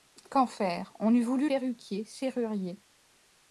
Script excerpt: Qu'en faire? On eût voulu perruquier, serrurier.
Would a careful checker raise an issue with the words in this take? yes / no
no